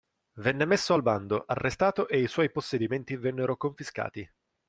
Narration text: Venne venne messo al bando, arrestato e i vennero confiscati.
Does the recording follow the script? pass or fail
fail